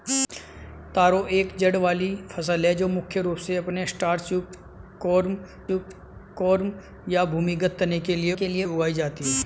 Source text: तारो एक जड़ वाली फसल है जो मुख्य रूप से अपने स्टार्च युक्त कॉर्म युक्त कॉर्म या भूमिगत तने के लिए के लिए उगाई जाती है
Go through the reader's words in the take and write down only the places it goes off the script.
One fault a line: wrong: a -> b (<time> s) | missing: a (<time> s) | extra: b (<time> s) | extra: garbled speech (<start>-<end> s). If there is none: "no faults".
no faults